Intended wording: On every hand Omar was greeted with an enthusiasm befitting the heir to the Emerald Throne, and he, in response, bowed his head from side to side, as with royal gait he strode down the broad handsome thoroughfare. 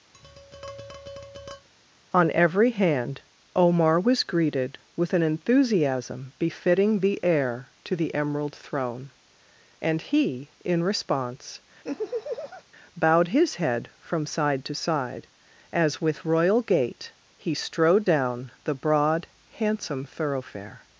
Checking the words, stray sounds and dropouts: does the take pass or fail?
fail